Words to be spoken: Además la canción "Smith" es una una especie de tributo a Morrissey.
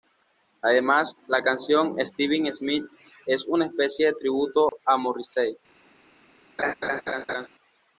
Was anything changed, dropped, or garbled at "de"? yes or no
no